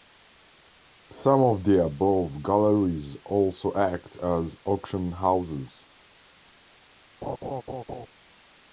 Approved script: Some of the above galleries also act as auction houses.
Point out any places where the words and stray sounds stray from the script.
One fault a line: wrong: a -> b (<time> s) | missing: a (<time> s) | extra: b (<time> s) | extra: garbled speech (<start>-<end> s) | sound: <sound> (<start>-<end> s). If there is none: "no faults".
sound: laugh (7.2-8.1 s)